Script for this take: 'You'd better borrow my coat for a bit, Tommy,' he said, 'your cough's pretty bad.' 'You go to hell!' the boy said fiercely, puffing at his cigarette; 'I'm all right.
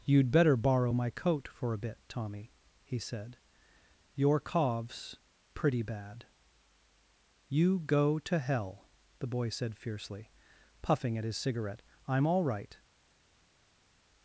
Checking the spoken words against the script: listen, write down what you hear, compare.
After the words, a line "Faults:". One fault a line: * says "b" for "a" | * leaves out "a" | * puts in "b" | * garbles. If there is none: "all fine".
'You'd better borrow my coat for a bit, Tommy,' he said, 'your cough's pretty bad.' 'You go to hell!' the boy said fiercely, puffing at his cigarette; 'I'm all right.
Faults:
all fine